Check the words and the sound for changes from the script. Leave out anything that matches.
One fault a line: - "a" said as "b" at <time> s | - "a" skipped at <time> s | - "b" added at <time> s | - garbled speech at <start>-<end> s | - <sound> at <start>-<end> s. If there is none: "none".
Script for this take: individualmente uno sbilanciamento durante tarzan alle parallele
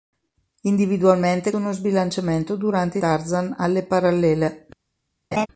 - laugh at 5.3-5.5 s